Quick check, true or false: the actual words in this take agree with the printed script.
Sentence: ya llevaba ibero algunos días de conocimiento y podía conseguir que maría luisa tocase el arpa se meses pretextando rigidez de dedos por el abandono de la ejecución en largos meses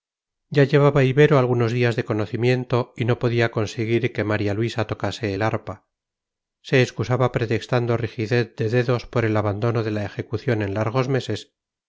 false